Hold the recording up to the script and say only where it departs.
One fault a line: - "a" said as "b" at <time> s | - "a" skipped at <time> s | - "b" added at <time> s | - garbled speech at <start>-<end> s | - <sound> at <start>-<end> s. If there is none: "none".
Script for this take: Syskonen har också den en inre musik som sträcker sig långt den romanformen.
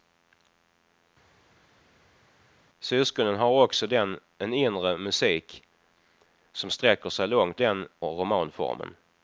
none